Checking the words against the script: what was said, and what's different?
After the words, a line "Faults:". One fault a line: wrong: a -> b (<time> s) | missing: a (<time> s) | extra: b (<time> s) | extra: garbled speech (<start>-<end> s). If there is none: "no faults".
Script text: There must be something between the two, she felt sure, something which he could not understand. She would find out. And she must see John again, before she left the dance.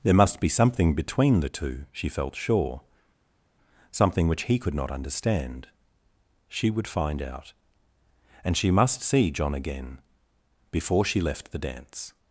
There must be something between the two, she felt sure, something which he could not understand. She would find out. And she must see John again, before she left the dance.
Faults:
no faults